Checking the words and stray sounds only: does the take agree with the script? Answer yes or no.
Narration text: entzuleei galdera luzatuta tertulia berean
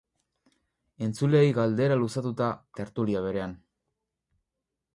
yes